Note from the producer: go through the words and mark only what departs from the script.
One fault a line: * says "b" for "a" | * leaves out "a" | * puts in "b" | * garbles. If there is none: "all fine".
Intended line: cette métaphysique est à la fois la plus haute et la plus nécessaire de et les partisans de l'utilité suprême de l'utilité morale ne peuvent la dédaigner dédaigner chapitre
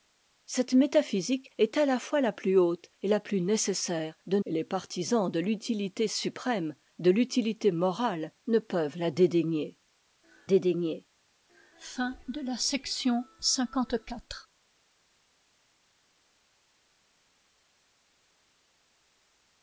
all fine